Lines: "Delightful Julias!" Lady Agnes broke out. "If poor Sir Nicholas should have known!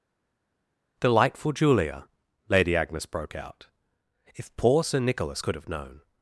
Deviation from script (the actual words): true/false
true